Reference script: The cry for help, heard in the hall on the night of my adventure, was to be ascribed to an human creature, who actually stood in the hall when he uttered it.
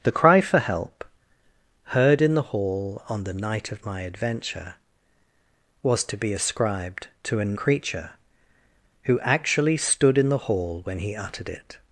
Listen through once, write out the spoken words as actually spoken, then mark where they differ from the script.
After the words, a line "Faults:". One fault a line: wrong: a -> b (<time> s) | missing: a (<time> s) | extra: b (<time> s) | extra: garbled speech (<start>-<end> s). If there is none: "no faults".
The cry for help, heard in the hall on the night of my adventure, was to be ascribed to an creature, who actually stood in the hall when he uttered it.
Faults:
missing: human (7.6 s)